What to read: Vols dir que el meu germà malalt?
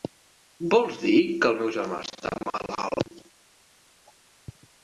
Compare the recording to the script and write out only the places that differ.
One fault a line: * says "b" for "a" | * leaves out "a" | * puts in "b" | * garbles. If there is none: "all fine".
* puts in "està"